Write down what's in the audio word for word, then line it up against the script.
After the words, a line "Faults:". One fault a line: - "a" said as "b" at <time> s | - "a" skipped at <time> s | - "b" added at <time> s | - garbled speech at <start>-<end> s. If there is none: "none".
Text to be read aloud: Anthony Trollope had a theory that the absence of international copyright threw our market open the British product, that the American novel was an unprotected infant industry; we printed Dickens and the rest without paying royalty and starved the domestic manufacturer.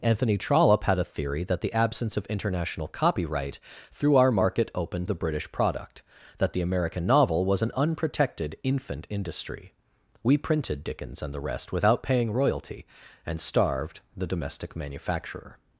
Anthony Trollope had a theory that the absence of international copyright threw our market open the British product, that the American novel was an unprotected infant industry; we printed Dickens and the rest without paying royalty and starved the domestic manufacturer.
Faults:
none